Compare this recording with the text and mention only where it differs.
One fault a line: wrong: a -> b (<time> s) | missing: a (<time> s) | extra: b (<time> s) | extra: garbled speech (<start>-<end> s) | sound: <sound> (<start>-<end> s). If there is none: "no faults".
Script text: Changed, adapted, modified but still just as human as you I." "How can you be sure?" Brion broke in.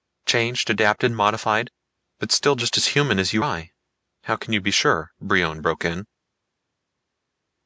no faults